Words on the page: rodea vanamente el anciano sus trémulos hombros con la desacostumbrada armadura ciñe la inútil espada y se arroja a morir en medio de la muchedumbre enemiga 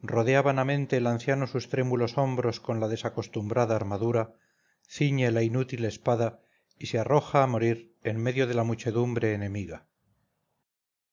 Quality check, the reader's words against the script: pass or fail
pass